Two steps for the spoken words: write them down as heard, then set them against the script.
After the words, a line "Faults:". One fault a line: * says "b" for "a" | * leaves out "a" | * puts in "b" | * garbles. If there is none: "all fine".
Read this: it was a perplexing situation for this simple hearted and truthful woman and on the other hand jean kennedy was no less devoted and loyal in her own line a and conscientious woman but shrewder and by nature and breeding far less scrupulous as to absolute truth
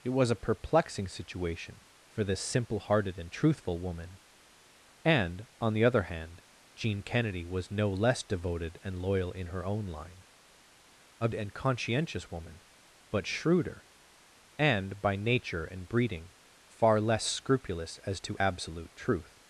it was a perplexing situation for this simple hearted and truthful woman and on the other hand jean kennedy was no less devoted and loyal in her own line a and conscientious woman but shrewder and by nature and breeding far less scrupulous as to absolute truth
Faults:
all fine